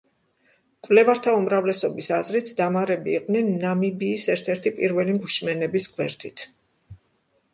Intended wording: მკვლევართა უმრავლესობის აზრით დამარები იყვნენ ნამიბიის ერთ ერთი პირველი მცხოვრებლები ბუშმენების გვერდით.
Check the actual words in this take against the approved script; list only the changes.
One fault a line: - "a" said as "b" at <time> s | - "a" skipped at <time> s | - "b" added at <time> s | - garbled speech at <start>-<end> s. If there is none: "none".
- "მცხოვრებლები" skipped at 5.2 s